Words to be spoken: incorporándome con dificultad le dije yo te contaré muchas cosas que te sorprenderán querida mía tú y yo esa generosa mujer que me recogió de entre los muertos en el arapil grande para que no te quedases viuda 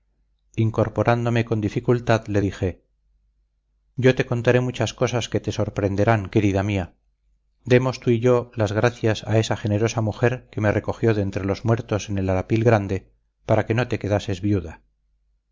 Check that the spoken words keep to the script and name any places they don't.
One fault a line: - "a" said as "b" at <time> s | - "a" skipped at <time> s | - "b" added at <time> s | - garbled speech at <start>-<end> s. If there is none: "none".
- "demos" added at 7.7 s
- "las gracias a" added at 8.5 s